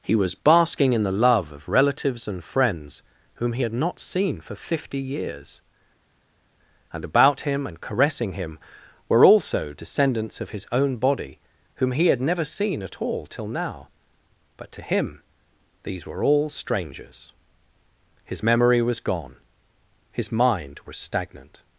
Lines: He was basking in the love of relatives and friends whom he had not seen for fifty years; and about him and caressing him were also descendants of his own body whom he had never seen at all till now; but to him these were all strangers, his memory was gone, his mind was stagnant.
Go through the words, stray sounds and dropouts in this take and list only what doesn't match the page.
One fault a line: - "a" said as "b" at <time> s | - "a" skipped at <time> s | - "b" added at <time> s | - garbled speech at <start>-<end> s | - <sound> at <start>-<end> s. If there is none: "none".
none